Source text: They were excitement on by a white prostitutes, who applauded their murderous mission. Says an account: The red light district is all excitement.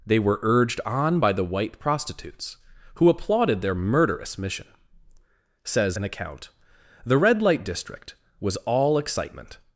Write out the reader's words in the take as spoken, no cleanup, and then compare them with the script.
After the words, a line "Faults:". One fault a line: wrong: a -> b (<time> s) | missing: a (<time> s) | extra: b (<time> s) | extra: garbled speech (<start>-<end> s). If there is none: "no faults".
They were urged on by the white prostitutes, who applauded their murderous mission. Says an account: The red light district was all excitement.
Faults:
wrong: excitement -> urged (0.4 s)
wrong: a -> the (1.3 s)
wrong: is -> was (8.4 s)